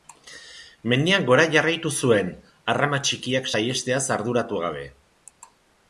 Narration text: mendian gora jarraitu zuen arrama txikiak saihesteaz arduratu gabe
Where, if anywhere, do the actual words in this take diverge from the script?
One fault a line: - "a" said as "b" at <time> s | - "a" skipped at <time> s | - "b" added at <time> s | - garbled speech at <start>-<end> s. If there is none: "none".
none